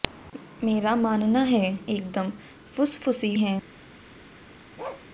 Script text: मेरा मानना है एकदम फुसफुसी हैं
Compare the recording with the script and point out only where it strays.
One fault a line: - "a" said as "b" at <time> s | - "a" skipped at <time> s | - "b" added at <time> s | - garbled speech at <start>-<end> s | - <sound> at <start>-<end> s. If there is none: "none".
- bark at 4.8-5.1 s